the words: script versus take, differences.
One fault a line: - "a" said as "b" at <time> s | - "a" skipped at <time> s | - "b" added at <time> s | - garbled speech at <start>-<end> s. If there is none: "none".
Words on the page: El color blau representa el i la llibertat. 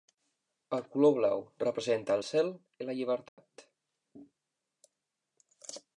- "cel" added at 2.3 s